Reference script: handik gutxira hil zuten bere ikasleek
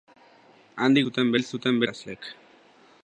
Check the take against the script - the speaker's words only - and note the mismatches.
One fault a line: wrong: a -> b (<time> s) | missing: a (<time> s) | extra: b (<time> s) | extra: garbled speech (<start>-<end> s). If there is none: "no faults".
wrong: gutxira -> zuten (1.1 s)
missing: bere (1.8 s)